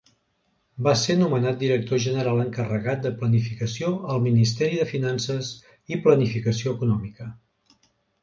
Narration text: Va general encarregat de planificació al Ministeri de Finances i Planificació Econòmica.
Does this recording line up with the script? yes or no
no